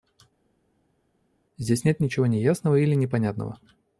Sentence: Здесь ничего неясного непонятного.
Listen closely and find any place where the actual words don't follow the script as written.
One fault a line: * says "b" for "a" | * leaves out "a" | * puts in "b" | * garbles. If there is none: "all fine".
* puts in "нет"
* puts in "или"